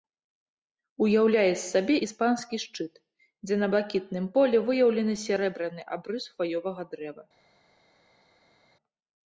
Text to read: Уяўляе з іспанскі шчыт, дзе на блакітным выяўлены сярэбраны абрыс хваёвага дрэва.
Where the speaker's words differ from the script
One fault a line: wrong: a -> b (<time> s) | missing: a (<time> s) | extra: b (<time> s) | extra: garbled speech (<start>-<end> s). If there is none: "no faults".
extra: сабе (1.7 s)
extra: полі (4.4 s)